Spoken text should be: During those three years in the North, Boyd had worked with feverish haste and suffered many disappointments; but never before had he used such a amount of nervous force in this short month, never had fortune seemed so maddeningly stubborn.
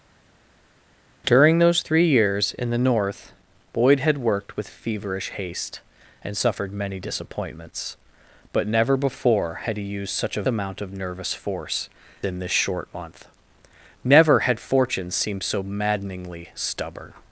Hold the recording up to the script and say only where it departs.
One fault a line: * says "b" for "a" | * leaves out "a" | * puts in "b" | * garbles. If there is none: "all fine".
all fine